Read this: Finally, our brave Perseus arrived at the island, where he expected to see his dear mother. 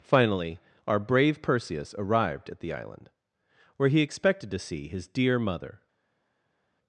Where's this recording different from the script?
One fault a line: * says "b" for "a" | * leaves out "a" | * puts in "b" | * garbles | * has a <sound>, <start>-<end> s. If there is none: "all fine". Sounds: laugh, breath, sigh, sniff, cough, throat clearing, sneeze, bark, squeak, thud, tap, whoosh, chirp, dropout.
all fine